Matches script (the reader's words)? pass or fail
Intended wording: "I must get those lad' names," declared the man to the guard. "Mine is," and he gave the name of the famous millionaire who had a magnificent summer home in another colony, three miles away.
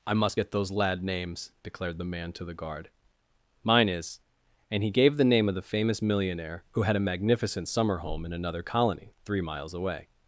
pass